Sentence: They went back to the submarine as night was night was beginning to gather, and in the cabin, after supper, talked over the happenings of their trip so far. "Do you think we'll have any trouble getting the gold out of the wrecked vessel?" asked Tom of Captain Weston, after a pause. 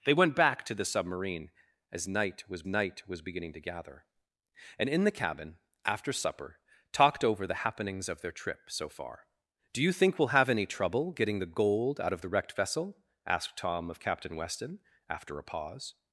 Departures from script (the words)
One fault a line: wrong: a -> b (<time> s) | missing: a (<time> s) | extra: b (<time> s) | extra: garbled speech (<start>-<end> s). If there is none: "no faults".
no faults